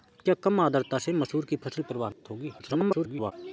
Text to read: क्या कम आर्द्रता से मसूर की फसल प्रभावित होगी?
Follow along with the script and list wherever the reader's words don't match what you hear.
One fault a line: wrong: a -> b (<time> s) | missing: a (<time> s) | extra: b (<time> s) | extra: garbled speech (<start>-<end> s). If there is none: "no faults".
extra: garbled speech (2.6-3.3 s)